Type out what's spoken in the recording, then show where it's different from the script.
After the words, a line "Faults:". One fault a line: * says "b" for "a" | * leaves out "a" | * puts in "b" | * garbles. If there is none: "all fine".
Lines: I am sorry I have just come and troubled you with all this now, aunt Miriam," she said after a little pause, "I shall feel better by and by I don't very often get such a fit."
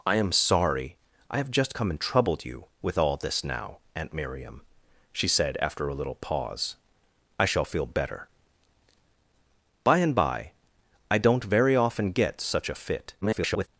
I am sorry I have just come and troubled you with all this now, aunt Miriam," she said after a little pause, "I shall feel better by and by I don't very often get such a fit." [garbled]
Faults:
* garbles